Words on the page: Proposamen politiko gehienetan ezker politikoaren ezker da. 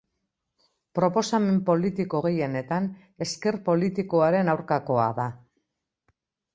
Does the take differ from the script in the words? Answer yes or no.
yes